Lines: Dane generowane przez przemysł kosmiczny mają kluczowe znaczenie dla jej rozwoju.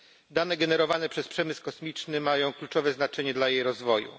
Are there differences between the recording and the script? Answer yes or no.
no